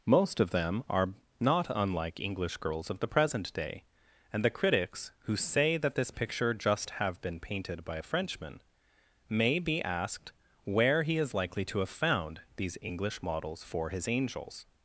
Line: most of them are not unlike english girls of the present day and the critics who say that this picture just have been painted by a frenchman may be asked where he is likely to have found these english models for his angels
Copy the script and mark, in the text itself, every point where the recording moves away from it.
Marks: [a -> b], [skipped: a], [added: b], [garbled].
most of them are not unlike english girls of the present day and the critics who say that this picture just have been painted by a frenchman may be asked where he is likely to have found these english models for his angels